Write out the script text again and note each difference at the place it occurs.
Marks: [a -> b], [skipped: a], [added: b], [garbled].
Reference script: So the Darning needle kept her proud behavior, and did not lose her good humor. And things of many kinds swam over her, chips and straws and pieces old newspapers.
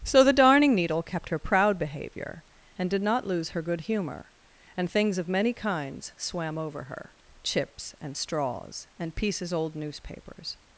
So the Darning needle kept her proud behavior, and did not lose her good humor. And things of many kinds swam over her, chips and straws and pieces old newspapers.